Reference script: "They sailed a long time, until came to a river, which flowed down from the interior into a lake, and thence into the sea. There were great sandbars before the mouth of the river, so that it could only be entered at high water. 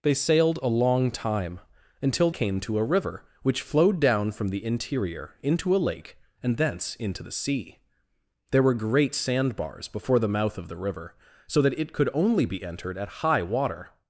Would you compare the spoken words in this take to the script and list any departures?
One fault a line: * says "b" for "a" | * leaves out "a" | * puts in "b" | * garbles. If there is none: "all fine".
all fine